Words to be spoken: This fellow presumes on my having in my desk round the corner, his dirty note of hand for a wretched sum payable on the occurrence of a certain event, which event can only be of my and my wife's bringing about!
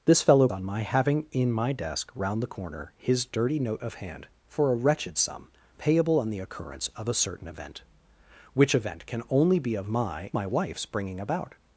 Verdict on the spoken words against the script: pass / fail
fail